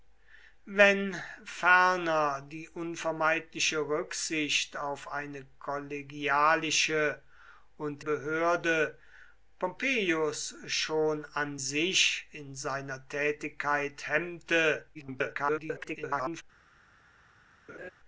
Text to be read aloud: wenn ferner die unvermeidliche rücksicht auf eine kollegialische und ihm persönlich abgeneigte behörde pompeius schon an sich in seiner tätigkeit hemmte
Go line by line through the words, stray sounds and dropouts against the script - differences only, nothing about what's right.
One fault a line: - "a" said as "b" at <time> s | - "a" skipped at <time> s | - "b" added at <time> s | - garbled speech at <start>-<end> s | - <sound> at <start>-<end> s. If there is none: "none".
- "ihm persönlich abgeneigte" skipped at 8.0 s
- garbled speech at 14.9-16.4 s
- laugh at 17.7-17.9 s